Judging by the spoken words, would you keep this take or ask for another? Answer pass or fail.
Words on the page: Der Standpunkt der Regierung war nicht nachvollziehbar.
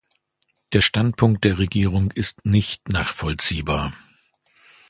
fail